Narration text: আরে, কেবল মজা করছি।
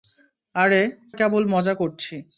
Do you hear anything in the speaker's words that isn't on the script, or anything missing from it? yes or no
no